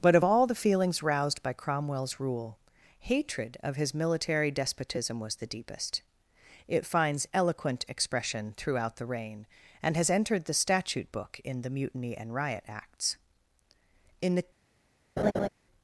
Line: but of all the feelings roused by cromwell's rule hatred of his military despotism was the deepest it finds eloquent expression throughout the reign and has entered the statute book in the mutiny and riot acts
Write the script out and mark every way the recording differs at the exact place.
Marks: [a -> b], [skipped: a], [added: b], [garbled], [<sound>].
but of all the feelings roused by cromwell's rule hatred of his military despotism was the deepest it finds eloquent expression throughout the reign and has entered the statute book in the mutiny and riot acts [added: in the] [laugh]